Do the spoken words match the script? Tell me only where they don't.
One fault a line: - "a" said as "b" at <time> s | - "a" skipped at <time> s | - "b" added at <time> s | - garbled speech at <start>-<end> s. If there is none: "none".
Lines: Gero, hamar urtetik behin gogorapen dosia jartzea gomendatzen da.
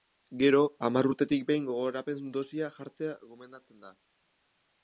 none